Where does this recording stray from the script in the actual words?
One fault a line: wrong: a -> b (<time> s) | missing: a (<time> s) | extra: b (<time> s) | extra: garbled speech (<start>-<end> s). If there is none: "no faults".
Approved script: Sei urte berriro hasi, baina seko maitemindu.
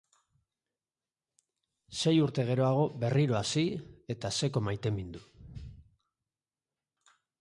extra: geroago (2.5 s)
wrong: baina -> eta (4.2 s)